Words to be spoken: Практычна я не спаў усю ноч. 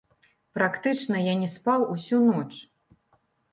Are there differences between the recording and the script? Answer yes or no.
no